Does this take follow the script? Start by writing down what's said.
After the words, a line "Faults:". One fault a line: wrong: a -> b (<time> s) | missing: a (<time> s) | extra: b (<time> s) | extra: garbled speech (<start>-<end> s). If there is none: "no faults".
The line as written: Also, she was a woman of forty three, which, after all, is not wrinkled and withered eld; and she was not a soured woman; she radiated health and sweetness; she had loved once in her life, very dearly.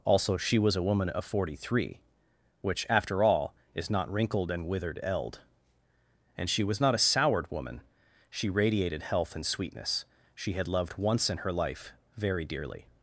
Also, she was a woman of forty three, which, after all, is not wrinkled and withered eld; and she was not a soured woman; she radiated health and sweetness; she had loved once in her life, very dearly.
Faults:
no faults